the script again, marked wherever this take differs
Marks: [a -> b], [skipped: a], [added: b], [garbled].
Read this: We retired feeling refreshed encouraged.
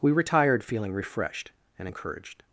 We retired feeling refreshed [added: and] encouraged.